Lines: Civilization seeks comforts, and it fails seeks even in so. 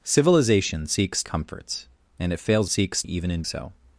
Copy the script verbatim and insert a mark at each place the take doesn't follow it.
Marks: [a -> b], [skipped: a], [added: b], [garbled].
Civilization seeks comforts, and it fails seeks even in so.